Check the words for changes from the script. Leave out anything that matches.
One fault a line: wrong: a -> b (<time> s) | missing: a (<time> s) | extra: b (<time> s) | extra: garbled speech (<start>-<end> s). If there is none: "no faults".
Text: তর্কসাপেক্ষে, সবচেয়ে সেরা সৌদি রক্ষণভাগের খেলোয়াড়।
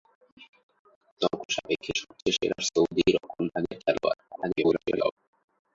extra: garbled speech (4.3-5.1 s)